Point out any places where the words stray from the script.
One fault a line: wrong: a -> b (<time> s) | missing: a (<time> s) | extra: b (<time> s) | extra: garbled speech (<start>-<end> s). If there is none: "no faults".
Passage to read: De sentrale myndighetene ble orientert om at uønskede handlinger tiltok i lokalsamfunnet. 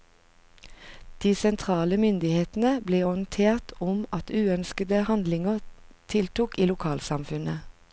no faults